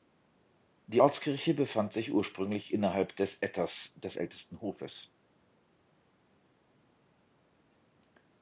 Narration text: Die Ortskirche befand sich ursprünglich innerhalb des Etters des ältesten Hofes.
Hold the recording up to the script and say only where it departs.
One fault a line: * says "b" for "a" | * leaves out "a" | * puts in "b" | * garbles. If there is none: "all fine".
all fine